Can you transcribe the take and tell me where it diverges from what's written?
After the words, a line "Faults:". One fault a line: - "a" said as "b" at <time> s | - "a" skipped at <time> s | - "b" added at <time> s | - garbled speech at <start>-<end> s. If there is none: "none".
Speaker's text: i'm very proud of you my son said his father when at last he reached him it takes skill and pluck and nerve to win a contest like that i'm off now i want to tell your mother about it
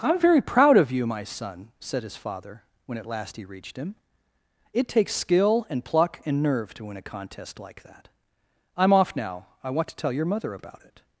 i'm very proud of you my son said his father when at last he reached him it takes skill and pluck and nerve to win a contest like that i'm off now i want to tell your mother about it
Faults:
none